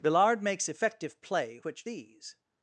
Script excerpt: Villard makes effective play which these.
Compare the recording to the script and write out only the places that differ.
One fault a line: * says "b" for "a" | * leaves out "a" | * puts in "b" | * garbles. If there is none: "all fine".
all fine